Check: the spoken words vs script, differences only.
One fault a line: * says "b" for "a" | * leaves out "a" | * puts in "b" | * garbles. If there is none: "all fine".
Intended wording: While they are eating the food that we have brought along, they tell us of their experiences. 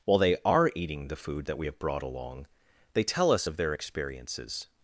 all fine